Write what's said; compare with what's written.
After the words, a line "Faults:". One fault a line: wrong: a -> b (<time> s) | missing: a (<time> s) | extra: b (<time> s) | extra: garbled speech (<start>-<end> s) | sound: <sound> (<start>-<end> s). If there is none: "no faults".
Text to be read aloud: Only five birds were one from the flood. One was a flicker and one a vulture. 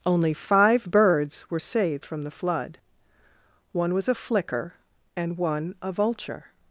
Only five birds were saved from the flood. One was a flicker and one a vulture.
Faults:
wrong: one -> saved (1.6 s)